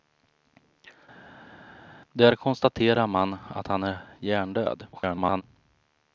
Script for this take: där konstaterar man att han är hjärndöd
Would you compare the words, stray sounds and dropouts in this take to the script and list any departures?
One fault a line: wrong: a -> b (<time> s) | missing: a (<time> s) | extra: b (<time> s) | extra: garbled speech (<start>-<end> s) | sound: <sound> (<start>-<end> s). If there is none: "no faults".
extra: garbled speech (4.9-5.4 s)